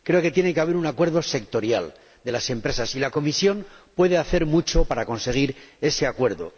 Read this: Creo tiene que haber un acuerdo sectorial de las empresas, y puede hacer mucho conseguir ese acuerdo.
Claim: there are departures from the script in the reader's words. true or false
true